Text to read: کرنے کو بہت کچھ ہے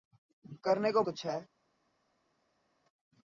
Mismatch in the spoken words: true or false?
true